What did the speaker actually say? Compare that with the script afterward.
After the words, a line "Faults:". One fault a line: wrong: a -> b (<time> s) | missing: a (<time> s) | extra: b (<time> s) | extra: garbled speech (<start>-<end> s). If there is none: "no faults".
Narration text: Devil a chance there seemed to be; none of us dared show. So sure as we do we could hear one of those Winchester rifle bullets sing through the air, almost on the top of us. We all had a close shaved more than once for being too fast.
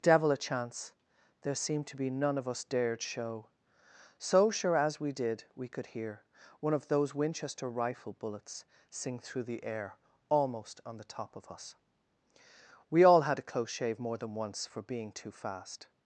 Devil a chance there seemed to be; none of us dared show. So sure as we did we could hear one of those Winchester rifle bullets sing through the air, almost on the top of us. We all had a close shave more than once for being too fast.
Faults:
wrong: do -> did (5.1 s)
wrong: shaved -> shave (13.7 s)